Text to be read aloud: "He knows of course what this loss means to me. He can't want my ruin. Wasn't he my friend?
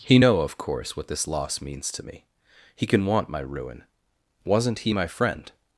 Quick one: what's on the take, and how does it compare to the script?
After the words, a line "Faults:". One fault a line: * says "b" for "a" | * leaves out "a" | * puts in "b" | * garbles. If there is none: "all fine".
"He know of course what this loss means to me. He can want my ruin. Wasn't he my friend?
Faults:
* says "know" for "knows"
* says "can" for "can't"